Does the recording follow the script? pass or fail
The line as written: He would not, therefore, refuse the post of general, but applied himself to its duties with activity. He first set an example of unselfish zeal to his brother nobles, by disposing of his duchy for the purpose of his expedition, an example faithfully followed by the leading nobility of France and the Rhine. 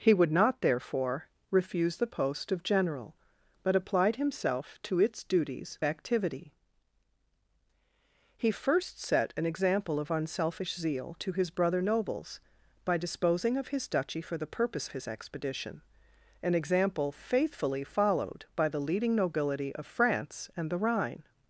fail